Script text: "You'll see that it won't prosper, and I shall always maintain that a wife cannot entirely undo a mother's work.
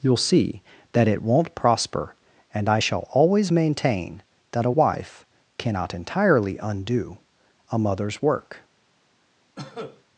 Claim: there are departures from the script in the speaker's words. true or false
false